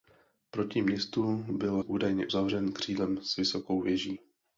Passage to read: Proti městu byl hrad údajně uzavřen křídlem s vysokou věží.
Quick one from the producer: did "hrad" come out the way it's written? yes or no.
no